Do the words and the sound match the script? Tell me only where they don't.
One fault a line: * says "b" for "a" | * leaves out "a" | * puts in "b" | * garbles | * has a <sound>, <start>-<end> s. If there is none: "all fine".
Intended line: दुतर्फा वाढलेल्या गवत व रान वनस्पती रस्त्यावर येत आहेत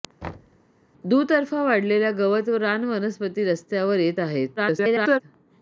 * has a thud, 0.2-0.6 s
* garbles